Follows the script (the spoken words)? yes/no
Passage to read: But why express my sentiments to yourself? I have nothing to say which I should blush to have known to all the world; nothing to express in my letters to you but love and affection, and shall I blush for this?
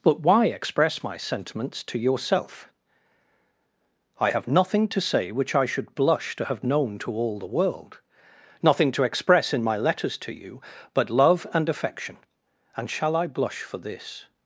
yes